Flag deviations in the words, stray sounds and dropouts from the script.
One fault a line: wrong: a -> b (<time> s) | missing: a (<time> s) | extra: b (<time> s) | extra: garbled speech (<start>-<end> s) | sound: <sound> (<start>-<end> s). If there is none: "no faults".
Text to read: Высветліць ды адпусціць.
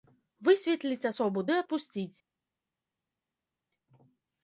extra: асобу (1.1 s)